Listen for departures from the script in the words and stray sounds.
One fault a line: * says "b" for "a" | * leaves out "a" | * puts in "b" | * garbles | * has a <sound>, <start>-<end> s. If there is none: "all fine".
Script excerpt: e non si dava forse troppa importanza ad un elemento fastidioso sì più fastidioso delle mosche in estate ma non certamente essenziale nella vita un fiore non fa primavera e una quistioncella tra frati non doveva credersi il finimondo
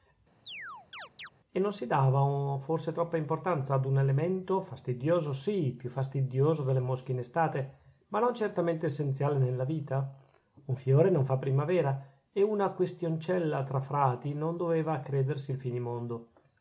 * has a chirp, 0.5-1.3 s